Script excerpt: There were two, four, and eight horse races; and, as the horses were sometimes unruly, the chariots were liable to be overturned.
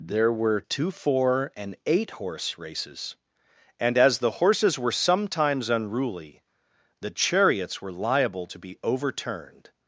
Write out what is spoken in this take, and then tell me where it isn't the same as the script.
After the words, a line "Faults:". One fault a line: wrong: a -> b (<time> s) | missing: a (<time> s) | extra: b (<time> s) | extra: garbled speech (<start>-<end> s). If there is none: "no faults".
There were two, four, and eight horse races; and, as the horses were sometimes unruly, the chariots were liable to be overturned.
Faults:
no faults